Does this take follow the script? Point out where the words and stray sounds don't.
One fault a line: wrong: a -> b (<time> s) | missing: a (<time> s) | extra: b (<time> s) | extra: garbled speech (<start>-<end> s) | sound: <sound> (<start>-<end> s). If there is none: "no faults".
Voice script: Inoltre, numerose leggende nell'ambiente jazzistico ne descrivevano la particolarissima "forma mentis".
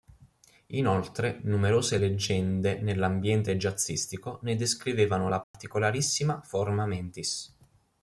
sound: dropout (5.4-5.5 s)